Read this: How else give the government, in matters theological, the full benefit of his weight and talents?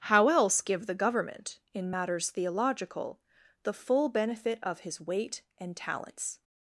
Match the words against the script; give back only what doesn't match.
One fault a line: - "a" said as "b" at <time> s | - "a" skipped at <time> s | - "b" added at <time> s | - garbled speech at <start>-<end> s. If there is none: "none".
none